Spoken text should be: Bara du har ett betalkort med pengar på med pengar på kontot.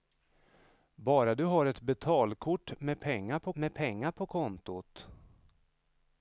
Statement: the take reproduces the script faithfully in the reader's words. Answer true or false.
true